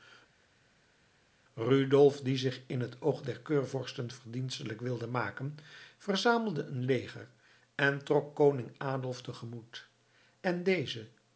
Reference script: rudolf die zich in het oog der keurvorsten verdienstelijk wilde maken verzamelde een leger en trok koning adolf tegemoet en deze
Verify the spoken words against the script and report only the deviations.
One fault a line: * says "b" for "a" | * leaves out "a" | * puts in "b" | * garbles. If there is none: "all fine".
all fine